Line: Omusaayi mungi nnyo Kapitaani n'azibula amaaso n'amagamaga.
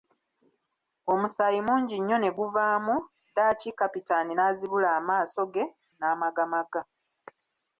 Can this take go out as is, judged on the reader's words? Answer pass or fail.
fail